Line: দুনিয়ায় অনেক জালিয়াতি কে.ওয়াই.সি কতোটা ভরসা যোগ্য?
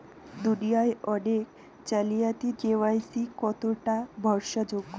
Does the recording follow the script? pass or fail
pass